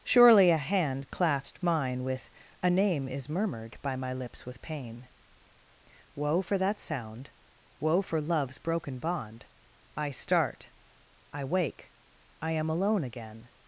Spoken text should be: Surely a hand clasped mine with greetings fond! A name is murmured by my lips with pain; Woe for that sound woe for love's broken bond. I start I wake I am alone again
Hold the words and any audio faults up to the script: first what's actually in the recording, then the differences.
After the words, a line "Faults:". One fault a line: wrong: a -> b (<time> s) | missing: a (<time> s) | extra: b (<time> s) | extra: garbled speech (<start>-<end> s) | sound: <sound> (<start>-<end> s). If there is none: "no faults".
Surely a hand clasped mine with! A name is murmured by my lips with pain; Woe for that sound woe for love's broken bond. I start I wake I am alone again
Faults:
missing: greetings fond (2.3 s)